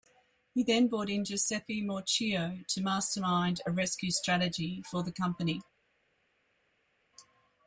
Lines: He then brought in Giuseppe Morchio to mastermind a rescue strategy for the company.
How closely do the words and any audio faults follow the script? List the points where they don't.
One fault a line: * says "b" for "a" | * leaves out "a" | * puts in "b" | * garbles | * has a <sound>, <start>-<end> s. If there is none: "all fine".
all fine